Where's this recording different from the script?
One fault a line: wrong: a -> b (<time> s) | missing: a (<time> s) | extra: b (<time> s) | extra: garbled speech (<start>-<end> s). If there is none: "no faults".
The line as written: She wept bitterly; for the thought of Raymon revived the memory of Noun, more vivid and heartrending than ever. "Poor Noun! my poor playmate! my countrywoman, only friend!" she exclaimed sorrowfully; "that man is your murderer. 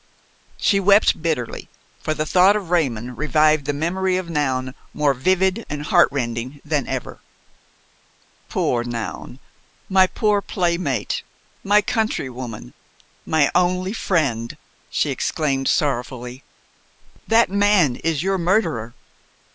extra: my (13.3 s)